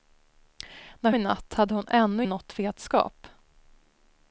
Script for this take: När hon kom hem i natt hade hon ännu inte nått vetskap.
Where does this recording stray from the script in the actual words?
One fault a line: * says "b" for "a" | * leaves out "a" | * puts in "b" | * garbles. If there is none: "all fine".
* leaves out "hon kom hem"
* leaves out "inte"